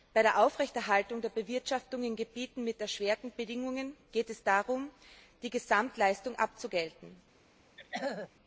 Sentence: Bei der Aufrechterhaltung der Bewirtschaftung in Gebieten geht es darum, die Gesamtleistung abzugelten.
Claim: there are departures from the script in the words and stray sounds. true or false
true